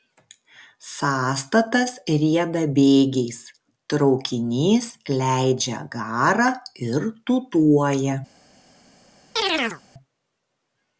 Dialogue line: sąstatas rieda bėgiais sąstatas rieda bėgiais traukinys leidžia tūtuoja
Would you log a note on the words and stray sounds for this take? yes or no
yes